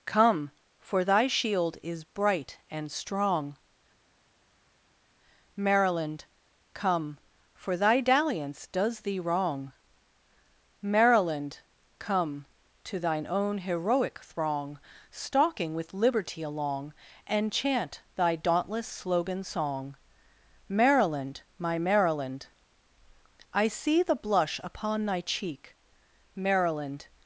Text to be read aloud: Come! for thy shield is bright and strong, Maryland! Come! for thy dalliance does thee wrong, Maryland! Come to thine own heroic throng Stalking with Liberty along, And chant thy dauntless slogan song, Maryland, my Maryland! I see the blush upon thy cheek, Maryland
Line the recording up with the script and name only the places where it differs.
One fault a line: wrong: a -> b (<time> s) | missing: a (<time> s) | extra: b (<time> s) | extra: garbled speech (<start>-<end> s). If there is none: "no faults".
no faults